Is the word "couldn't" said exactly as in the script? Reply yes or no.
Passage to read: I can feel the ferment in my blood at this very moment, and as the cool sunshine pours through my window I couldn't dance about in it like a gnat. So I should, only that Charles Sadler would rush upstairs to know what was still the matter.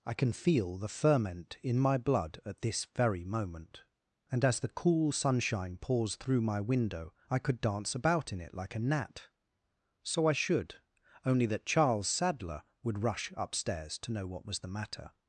no